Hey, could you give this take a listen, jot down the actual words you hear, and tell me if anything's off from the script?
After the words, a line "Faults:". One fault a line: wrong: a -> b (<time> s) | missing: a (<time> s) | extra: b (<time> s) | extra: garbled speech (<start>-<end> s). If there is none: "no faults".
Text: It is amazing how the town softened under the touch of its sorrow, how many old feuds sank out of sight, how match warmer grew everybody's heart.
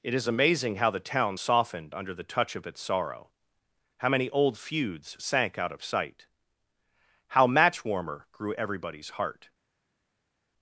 It is amazing how the town softened under the touch of its sorrow, how many old feuds sank out of sight, how match warmer grew everybody's heart.
Faults:
no faults